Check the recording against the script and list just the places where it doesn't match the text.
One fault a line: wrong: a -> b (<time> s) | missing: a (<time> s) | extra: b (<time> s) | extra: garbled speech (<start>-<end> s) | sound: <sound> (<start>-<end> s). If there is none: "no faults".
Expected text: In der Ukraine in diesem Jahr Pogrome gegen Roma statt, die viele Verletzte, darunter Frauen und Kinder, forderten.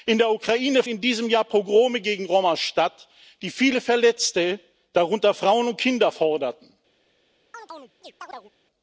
sound: chirp (7.5-8.5 s)